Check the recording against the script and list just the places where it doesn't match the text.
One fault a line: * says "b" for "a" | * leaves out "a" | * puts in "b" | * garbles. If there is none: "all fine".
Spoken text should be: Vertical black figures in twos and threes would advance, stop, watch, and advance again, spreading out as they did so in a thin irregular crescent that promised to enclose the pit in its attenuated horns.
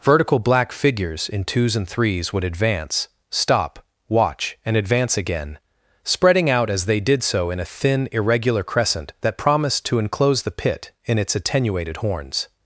all fine